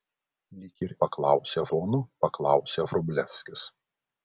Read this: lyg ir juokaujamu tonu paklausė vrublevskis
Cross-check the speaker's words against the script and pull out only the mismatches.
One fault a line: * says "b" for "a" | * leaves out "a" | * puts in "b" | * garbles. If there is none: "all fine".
* says "paklausė" for "juokaujamu"